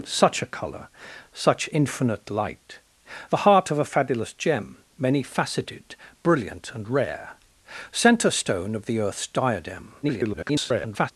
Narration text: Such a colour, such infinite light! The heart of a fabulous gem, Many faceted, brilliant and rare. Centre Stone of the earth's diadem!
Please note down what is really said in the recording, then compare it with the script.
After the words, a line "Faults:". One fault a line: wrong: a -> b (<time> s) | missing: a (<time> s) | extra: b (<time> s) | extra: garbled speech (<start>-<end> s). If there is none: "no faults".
Such a colour, such infinite light! The heart of a fabulous gem, Many faceted, brilliant and rare. Centre Stone of the earth's diadem! [garbled]
Faults:
extra: garbled speech (10.0-11.1 s)